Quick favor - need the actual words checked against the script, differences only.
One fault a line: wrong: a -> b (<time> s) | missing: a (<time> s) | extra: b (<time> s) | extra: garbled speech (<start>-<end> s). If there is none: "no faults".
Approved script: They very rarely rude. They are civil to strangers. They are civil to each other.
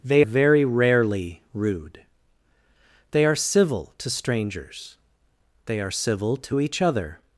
no faults